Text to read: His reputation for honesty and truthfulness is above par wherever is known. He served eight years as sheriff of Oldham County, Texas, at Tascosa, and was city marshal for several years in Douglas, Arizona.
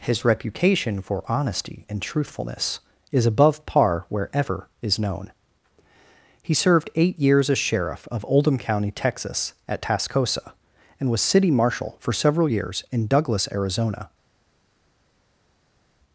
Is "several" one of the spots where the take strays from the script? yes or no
no